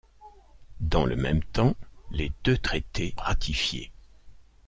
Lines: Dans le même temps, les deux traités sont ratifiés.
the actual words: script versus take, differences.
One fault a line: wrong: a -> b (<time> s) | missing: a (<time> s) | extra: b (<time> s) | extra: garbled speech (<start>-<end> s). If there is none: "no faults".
missing: sont (3.1 s)